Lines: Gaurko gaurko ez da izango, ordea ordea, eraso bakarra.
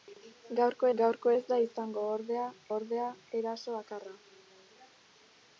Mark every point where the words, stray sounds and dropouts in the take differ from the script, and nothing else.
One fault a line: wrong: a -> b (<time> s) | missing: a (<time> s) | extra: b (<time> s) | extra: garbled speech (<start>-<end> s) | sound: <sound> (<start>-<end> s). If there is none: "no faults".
no faults